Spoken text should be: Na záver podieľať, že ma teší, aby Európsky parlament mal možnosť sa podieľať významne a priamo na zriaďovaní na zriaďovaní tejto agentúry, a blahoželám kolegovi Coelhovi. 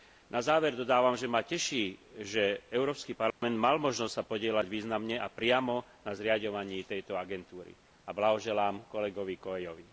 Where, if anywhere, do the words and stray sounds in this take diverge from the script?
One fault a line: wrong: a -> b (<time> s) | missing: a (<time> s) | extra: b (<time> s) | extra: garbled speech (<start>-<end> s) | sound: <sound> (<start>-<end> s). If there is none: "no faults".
wrong: podieľať -> dodávam (0.8 s)
wrong: aby -> že (2.2 s)
sound: dropout (3.3-3.4 s)
missing: na zriaďovaní (6.9 s)